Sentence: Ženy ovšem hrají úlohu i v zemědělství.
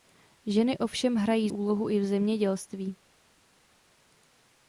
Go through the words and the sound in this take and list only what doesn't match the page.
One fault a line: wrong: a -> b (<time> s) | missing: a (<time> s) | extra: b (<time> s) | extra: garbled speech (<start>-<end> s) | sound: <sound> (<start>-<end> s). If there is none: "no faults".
no faults